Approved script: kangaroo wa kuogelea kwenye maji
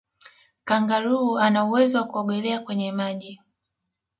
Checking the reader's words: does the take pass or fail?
fail